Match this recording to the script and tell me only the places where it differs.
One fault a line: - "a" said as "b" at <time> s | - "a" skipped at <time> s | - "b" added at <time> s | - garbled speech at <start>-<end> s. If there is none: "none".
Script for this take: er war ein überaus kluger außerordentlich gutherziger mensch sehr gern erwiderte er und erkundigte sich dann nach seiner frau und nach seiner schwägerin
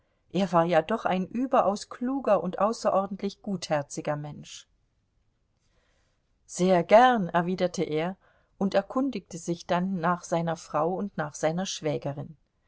- "ja doch" added at 0.7 s
- "und" added at 2.4 s